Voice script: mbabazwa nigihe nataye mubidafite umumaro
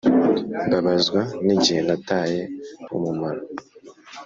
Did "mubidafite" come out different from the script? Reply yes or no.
yes